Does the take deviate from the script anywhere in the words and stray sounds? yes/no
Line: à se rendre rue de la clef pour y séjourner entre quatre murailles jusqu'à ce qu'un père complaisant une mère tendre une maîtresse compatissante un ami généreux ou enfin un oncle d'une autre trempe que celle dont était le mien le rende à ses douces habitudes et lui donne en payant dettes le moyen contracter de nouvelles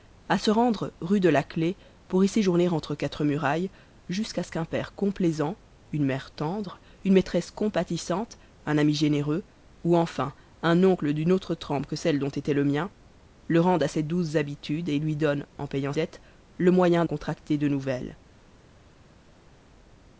no